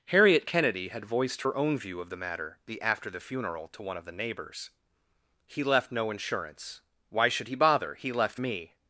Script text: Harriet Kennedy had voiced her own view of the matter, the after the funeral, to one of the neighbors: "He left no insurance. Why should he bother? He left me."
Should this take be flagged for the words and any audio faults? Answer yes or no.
no